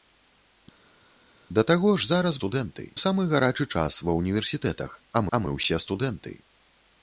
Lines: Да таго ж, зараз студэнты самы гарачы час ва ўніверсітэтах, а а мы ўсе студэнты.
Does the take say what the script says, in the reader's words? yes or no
yes